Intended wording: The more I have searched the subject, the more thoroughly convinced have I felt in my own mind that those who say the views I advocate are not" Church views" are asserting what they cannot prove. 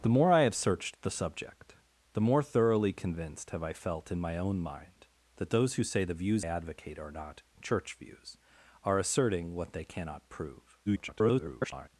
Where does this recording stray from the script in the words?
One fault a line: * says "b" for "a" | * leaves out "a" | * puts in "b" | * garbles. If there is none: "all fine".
* leaves out "I"
* garbles